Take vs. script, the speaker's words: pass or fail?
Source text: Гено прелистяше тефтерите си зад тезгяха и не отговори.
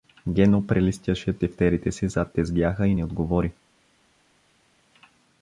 pass